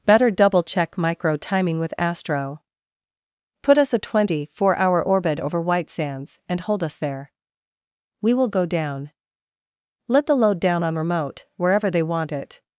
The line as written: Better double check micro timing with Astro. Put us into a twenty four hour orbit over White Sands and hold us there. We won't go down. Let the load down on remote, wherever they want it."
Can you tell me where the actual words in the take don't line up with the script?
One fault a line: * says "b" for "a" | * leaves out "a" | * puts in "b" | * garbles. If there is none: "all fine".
* leaves out "into"
* says "will" for "won't"